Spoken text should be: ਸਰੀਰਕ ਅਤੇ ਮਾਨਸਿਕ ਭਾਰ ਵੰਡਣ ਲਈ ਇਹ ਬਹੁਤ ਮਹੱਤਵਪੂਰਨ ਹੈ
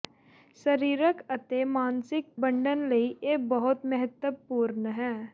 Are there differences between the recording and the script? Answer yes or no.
yes